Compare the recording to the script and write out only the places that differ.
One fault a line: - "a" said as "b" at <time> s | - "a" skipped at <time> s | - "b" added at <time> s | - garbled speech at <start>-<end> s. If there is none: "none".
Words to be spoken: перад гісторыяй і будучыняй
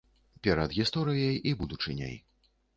none